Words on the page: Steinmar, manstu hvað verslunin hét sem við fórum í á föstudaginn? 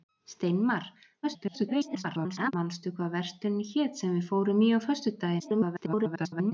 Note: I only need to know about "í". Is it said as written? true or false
true